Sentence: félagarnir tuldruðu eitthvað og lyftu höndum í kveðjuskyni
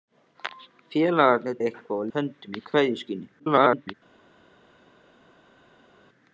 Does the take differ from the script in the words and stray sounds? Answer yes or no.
yes